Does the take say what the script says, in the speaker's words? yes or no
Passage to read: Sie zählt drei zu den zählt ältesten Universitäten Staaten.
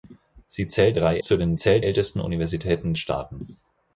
yes